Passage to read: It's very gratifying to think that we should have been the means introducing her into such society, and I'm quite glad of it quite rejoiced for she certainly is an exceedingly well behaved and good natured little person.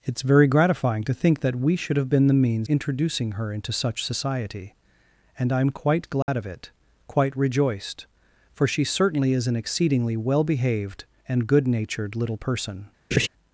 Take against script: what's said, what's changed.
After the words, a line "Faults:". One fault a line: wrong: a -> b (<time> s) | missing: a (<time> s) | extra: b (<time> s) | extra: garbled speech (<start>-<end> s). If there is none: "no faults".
It's very gratifying to think that we should have been the means introducing her into such society, and I'm quite glad of it quite rejoiced for she certainly is an exceedingly well behaved and good natured little person.
Faults:
no faults